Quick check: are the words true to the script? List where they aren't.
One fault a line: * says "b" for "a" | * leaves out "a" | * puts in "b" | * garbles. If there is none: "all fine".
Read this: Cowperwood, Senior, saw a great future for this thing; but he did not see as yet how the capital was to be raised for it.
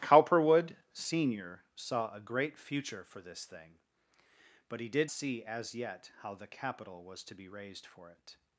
* leaves out "not"